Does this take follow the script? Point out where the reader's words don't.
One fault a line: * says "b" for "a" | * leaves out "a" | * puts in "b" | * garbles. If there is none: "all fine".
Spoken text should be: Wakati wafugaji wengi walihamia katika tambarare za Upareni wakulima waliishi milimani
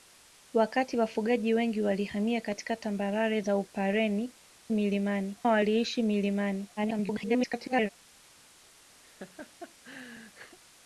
* says "milimani" for "wakulima"
* garbles